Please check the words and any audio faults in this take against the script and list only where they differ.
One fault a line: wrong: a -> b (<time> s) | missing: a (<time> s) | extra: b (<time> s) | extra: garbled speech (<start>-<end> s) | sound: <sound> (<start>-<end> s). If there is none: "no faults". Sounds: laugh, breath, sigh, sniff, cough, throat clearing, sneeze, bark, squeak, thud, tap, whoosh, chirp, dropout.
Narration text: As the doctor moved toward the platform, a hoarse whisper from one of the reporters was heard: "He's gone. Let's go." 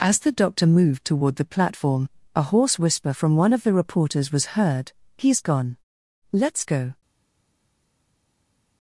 no faults